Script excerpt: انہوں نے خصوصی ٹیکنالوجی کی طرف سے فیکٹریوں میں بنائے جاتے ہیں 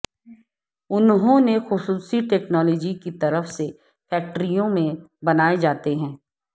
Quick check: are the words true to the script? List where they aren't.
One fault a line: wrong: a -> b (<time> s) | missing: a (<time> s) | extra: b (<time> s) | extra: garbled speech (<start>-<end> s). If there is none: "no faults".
no faults